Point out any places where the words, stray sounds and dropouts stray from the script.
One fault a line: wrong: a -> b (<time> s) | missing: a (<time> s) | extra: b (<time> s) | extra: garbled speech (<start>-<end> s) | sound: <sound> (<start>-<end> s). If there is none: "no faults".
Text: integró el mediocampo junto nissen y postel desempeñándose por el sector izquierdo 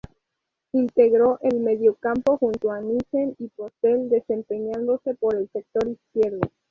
extra: a (2.7 s)